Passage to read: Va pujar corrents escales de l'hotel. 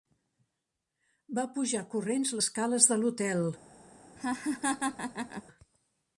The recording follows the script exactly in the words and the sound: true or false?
false